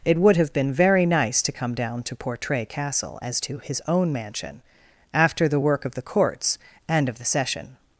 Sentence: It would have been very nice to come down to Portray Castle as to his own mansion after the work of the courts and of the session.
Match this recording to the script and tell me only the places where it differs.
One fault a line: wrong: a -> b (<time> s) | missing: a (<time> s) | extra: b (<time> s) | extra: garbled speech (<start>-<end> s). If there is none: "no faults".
no faults